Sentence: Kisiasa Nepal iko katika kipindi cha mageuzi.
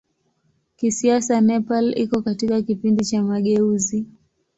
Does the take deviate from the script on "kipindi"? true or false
false